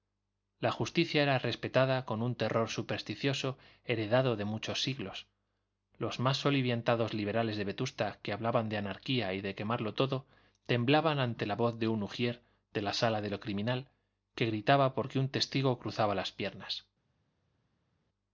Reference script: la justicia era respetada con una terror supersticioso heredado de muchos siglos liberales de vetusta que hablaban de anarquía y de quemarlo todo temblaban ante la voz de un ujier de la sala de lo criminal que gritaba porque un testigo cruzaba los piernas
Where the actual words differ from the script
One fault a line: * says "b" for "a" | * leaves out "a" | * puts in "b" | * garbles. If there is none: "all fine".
* says "un" for "una"
* puts in "los más soliviantados"
* says "las" for "los"